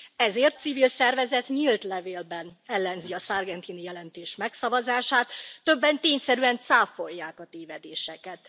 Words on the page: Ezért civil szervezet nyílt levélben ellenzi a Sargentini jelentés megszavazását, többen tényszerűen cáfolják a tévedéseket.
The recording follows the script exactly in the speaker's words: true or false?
true